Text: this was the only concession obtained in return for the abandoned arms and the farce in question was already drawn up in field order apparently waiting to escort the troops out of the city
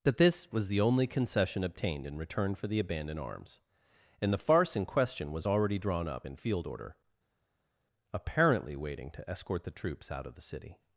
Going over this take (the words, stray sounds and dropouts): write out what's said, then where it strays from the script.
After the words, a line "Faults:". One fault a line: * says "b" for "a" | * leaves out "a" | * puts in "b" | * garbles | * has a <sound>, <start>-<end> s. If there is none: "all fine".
that this was the only concession obtained in return for the abandoned arms and the farce in question was already drawn up in field order apparently waiting to escort the troops out of the city
Faults:
* puts in "that"